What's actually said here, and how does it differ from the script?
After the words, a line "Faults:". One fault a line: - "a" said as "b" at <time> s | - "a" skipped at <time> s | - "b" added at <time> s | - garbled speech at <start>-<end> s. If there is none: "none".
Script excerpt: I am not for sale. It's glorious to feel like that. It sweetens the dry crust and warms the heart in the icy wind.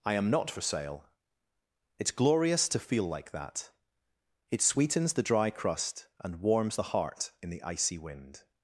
I am not for sale. It's glorious to feel like that. It sweetens the dry crust and warms the heart in the icy wind.
Faults:
none